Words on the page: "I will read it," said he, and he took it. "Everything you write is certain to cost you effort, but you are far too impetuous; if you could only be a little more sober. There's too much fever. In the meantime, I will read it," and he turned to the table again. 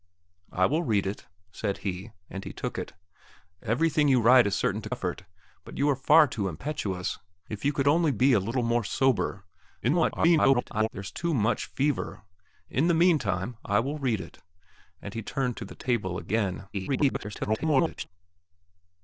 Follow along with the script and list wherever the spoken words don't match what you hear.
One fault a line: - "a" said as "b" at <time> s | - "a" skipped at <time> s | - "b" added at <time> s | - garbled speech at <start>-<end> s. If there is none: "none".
- "cost you" skipped at 4.9 s
- garbled speech at 9.8-10.9 s
- garbled speech at 16.7-18.1 s